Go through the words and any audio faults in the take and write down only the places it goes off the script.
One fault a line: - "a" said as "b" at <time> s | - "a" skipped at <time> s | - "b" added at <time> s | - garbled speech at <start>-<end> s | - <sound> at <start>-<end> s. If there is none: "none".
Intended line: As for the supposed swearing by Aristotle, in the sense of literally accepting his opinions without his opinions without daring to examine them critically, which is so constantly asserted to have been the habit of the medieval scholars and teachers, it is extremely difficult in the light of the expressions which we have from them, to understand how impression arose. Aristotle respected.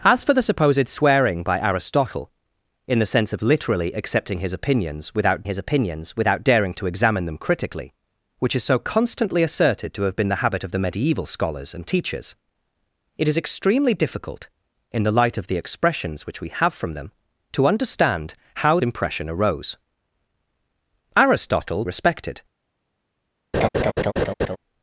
- laugh at 23.5-24.6 s